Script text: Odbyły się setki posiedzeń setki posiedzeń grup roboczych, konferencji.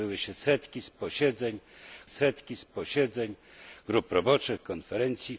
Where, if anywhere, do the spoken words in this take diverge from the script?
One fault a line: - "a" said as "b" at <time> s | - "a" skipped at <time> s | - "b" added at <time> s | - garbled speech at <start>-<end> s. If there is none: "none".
none